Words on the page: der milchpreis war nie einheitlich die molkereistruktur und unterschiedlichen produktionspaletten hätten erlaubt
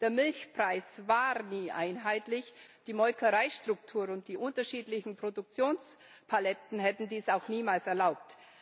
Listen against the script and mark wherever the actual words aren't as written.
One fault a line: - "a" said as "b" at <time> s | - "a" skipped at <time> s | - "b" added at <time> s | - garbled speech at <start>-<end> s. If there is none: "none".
- "die" added at 4.3 s
- "dies auch niemals" added at 7.1 s